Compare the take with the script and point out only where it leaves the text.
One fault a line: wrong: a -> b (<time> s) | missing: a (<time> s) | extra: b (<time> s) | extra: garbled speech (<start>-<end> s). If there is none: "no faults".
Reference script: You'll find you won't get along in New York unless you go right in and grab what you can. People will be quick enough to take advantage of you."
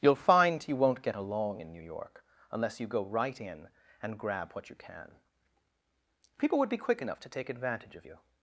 wrong: will -> would (6.6 s)